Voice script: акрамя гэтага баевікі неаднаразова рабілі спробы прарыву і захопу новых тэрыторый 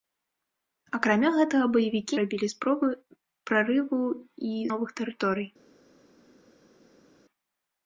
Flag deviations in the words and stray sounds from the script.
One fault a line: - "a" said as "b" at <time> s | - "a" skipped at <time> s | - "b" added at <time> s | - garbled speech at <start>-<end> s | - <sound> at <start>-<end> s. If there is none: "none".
- "неаднаразова" skipped at 2.1 s
- "захопу" skipped at 4.6 s